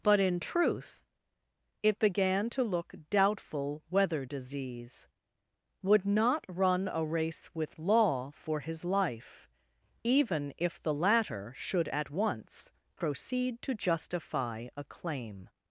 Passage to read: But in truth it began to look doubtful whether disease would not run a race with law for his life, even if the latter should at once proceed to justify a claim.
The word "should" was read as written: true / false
true